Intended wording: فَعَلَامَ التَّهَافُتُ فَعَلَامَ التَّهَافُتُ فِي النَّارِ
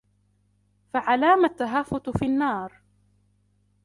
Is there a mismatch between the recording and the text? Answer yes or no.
yes